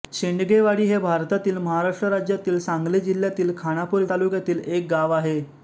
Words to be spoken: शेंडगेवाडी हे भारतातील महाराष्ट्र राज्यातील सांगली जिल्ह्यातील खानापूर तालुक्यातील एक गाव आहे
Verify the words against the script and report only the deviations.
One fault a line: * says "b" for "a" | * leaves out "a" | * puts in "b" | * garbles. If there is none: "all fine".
all fine